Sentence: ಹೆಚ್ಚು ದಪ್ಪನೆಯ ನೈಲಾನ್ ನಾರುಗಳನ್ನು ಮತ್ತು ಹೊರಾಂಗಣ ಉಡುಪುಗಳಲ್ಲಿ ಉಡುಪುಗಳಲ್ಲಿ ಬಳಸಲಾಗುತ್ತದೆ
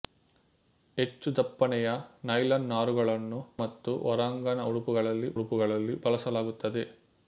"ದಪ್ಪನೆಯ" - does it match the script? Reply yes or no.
yes